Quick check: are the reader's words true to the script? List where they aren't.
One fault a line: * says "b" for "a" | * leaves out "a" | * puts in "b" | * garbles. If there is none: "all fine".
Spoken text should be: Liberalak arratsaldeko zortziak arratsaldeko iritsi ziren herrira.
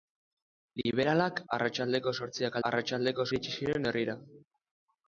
all fine